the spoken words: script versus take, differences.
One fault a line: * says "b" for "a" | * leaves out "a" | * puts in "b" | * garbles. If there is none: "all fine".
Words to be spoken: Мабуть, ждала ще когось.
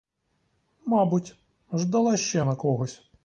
* puts in "на"